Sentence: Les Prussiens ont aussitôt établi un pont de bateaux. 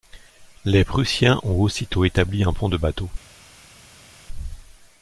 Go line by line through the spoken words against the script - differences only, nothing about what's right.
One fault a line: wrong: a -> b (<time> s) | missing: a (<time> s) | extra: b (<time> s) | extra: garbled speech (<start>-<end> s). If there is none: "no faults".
no faults